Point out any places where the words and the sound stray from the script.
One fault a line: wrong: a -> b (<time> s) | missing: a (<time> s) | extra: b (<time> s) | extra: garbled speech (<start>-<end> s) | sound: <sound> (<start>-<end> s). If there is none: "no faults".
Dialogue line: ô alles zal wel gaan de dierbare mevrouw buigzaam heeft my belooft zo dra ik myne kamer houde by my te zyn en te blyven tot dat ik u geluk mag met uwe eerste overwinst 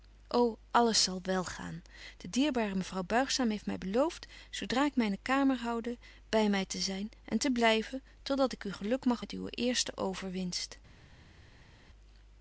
no faults